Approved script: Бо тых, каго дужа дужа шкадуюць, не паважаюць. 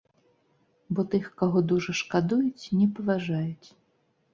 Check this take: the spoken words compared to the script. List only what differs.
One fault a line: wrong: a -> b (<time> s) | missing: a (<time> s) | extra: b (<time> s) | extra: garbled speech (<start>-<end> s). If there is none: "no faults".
missing: дужа (2.0 s)